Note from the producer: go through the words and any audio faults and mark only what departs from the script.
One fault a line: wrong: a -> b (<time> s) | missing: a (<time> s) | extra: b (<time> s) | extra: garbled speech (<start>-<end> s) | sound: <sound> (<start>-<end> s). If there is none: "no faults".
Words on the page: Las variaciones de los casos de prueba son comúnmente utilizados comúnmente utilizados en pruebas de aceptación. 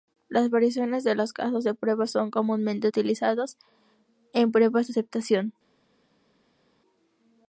missing: comúnmente utilizados (3.6 s)